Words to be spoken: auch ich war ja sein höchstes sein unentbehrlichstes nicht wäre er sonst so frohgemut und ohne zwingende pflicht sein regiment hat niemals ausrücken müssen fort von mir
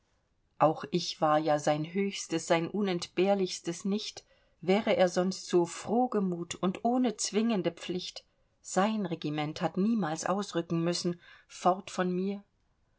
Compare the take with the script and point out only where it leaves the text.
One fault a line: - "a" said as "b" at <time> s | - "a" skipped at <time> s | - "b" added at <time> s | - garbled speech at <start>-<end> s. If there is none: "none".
none